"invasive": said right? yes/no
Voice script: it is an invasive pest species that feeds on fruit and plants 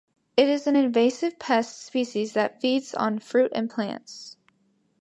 yes